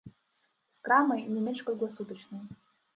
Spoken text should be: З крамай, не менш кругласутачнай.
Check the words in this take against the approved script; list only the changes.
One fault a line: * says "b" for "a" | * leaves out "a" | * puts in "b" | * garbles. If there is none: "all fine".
all fine